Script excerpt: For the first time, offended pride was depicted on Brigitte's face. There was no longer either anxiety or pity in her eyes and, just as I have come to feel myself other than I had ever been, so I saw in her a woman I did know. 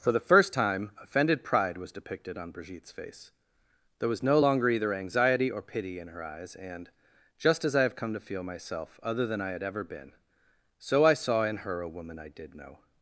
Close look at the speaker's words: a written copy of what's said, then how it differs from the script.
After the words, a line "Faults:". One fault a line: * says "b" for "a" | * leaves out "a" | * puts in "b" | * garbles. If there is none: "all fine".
For the first time, offended pride was depicted on Brigitte's face. There was no longer either anxiety or pity in her eyes and, just as I have come to feel myself other than I had ever been, so I saw in her a woman I did know.
Faults:
all fine